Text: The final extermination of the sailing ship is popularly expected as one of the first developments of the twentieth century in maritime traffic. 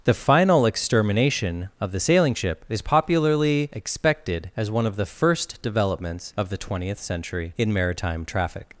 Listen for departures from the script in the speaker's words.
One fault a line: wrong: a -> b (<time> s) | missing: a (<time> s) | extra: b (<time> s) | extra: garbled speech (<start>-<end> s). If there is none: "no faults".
no faults